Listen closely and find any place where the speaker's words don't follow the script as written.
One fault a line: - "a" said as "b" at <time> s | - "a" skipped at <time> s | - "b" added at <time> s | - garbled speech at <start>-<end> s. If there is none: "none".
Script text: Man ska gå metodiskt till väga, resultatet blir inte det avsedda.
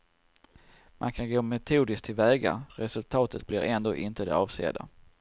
- "ska" said as "kan" at 1.1 s
- "ändå" added at 3.6 s